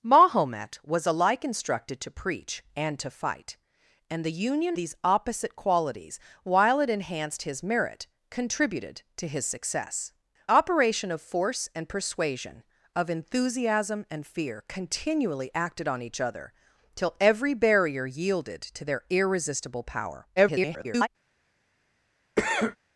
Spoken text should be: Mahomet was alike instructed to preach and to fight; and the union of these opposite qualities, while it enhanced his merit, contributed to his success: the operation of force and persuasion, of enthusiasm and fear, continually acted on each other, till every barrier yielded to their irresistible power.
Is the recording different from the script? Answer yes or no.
yes